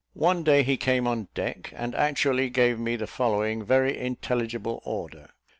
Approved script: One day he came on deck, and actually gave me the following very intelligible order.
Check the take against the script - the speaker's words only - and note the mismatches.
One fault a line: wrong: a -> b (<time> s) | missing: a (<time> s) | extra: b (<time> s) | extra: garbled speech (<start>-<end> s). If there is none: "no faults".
no faults